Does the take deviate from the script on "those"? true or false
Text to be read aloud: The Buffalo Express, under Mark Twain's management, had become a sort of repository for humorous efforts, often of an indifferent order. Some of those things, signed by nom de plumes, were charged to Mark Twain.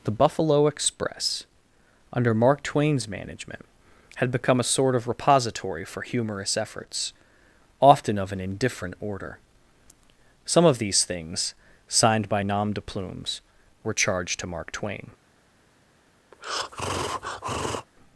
true